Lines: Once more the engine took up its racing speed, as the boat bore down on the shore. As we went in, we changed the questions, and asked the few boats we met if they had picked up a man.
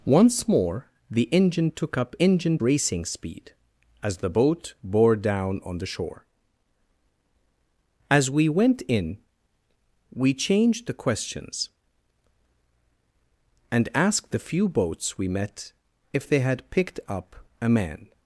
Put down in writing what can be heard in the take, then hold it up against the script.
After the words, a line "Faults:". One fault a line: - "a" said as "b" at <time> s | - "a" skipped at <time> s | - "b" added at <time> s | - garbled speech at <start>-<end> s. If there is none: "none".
Once more the engine took up engine racing speed, as the boat bore down on the shore. As we went in, we changed the questions, and asked the few boats we met if they had picked up a man.
Faults:
- "its" said as "engine" at 2.2 s